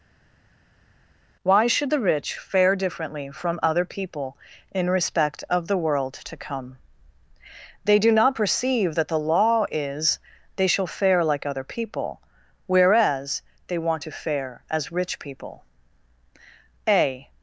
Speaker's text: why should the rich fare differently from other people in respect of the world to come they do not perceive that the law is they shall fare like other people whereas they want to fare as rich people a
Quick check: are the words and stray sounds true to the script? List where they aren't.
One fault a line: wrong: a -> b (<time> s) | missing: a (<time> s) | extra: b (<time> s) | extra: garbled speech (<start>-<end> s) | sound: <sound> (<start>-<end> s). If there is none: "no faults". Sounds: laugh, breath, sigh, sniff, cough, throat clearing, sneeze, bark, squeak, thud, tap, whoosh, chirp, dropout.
no faults